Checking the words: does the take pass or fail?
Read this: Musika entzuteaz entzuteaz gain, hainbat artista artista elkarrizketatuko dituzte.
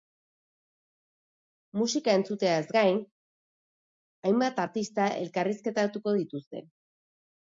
fail